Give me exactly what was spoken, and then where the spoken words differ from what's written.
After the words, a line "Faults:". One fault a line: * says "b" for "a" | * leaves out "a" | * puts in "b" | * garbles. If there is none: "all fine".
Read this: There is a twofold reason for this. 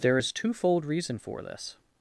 There is twofold reason for this.
Faults:
* leaves out "a"